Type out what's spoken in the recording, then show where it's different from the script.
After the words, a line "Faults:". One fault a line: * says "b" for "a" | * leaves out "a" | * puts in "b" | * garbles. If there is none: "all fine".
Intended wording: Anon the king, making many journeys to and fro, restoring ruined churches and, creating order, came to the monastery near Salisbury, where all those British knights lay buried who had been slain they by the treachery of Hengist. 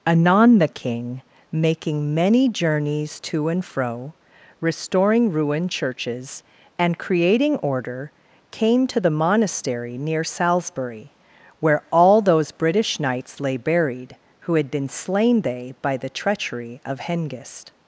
Anon the king, making many journeys to and fro, restoring ruined churches and, creating order, came to the monastery near Salisbury, where all those British knights lay buried who had been slain they by the treachery of Hengist.
Faults:
all fine